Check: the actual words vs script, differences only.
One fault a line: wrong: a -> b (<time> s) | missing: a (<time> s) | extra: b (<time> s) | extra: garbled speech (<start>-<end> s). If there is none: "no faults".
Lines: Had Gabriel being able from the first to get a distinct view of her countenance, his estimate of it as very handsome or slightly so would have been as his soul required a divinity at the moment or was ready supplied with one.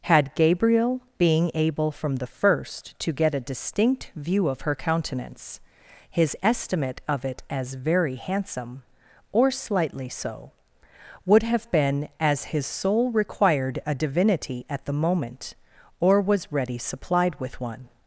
no faults